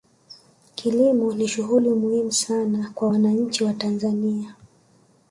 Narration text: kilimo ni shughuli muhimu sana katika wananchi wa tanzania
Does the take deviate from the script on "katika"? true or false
true